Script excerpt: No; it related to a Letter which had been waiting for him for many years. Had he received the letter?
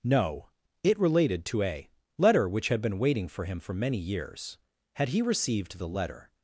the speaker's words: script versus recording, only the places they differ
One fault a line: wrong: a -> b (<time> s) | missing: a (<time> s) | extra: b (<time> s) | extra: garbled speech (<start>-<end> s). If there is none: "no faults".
no faults